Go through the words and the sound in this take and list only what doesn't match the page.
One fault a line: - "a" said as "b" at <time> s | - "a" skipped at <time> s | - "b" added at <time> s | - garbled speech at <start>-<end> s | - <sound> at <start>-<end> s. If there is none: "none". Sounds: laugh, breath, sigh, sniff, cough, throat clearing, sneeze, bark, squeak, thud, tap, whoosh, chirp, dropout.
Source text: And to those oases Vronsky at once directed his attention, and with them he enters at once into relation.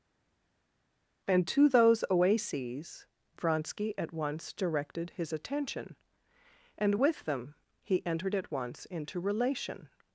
- "enters" said as "entered" at 8.1 s